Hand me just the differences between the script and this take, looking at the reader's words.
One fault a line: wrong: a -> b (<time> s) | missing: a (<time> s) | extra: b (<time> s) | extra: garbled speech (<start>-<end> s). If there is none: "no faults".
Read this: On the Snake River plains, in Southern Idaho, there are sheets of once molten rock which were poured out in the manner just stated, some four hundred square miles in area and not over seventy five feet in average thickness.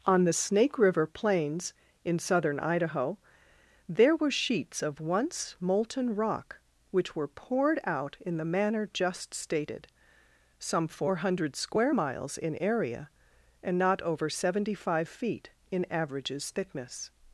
wrong: are -> were (4.2 s)
wrong: average -> averages (15.9 s)